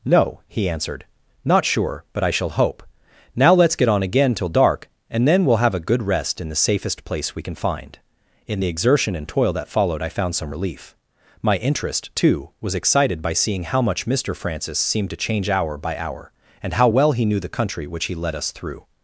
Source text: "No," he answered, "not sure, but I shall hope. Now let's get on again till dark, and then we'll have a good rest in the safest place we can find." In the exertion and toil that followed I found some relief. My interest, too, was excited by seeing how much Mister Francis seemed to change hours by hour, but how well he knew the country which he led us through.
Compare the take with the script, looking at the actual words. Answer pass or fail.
fail